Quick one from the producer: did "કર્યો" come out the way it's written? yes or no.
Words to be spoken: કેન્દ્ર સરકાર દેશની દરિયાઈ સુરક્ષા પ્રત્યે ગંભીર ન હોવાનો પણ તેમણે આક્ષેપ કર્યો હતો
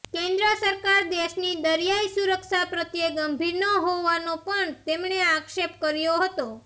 yes